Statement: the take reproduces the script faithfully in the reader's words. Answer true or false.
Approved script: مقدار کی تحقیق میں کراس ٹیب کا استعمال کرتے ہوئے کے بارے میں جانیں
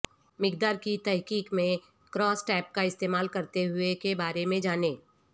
true